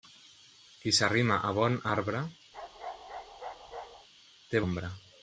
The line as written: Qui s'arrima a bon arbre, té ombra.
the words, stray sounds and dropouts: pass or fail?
fail